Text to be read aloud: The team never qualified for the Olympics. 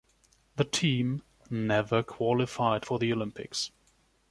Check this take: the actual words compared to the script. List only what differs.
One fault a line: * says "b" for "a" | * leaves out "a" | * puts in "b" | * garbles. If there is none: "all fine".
all fine